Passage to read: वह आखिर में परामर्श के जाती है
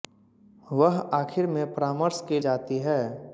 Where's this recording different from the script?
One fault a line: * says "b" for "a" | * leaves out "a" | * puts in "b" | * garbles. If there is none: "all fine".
all fine